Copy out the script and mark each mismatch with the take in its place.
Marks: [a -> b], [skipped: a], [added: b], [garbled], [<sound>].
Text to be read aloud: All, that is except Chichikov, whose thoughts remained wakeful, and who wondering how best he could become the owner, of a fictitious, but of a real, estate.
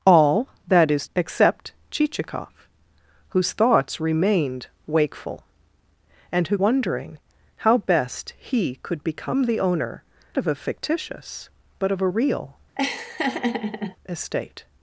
All, that is except Chichikov, whose thoughts remained wakeful, and who wondering how best he could become the owner, of a fictitious, but of a real, [laugh] estate.